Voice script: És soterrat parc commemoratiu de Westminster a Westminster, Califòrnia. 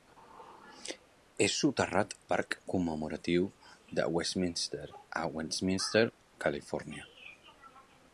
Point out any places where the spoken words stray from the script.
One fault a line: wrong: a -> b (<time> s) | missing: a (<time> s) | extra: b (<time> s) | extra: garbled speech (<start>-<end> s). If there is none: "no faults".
no faults